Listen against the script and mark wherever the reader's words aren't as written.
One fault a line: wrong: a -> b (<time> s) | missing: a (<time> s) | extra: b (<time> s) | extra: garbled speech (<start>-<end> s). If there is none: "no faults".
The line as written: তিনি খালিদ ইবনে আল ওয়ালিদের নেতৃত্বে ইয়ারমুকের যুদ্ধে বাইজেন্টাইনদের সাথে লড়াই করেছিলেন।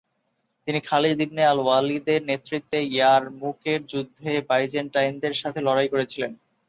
no faults